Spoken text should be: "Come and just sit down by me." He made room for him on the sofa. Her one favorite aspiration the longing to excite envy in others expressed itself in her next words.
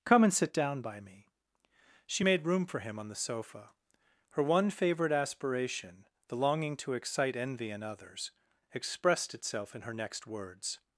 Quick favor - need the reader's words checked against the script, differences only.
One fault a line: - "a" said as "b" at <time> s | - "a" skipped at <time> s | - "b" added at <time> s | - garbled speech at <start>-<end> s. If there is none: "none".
- "just" skipped at 0.3 s
- "He" said as "She" at 2.0 s